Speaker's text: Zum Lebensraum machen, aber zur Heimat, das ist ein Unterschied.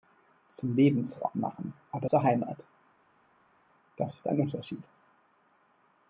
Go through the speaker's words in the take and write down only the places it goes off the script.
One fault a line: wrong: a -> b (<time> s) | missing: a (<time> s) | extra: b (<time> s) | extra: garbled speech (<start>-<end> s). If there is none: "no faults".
no faults